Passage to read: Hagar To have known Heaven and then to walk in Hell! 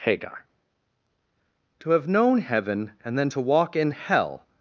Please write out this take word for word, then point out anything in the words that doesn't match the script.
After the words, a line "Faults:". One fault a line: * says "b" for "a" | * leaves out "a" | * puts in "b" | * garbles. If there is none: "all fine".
Hagar To have known Heaven and then to walk in Hell!
Faults:
all fine